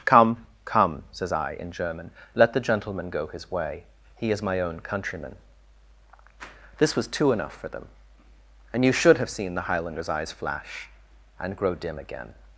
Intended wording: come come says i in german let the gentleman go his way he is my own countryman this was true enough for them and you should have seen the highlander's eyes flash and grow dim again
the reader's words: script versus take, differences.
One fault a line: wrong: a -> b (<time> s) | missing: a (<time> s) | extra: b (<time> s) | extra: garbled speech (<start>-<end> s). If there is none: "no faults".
wrong: true -> two (7.1 s)